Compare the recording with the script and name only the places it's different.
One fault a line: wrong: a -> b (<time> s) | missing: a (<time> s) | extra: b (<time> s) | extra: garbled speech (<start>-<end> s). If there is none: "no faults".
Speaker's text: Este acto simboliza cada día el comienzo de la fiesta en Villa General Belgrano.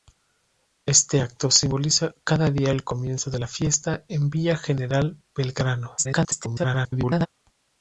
extra: garbled speech (6.0-7.3 s)